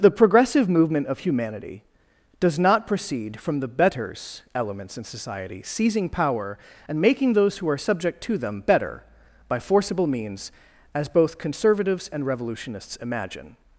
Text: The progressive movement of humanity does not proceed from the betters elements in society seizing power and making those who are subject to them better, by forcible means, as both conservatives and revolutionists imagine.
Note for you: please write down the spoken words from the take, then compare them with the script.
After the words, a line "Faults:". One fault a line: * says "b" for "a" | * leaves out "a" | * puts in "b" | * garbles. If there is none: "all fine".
The progressive movement of humanity does not proceed from the betters elements in society seizing power and making those who are subject to them better, by forcible means, as both conservatives and revolutionists imagine.
Faults:
all fine